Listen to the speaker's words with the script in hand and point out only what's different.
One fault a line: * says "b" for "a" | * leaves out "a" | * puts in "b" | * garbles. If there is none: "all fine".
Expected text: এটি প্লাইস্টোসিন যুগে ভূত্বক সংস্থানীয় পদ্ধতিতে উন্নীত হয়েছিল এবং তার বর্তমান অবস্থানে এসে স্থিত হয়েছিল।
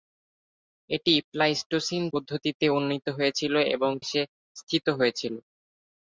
* leaves out "যুগে ভূত্বক সংস্থানীয়"
* leaves out "তার বর্তমান অবস্থানে"